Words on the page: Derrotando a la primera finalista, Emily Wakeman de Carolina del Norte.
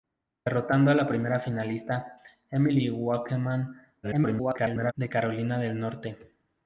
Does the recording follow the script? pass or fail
fail